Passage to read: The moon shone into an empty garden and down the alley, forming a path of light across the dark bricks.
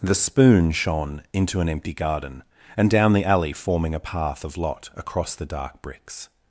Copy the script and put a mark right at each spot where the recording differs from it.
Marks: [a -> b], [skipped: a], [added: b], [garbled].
The [moon -> spoon] shone into an empty garden and down the alley, forming a path of [light -> lot] across the dark bricks.